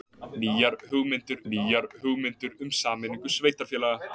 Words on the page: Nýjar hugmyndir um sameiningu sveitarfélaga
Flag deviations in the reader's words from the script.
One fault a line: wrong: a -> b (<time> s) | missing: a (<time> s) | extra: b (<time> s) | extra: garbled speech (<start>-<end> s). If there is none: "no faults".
extra: nýjar hugmyndir (1.5 s)